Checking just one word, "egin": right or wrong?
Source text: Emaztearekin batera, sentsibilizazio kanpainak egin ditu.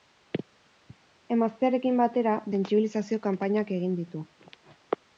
right